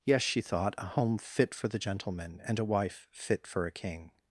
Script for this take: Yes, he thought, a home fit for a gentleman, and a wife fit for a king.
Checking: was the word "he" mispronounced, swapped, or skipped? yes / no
yes